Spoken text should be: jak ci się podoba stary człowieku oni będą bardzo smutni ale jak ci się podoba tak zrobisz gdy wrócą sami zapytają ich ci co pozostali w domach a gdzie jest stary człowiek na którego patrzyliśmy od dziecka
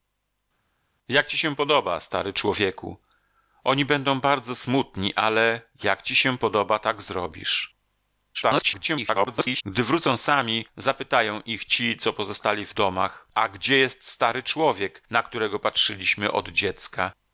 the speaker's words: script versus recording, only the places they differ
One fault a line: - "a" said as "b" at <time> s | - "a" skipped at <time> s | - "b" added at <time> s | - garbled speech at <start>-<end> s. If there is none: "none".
- garbled speech at 8.3-9.6 s